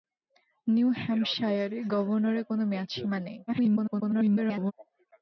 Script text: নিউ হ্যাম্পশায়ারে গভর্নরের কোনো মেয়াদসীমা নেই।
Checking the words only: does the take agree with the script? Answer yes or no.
no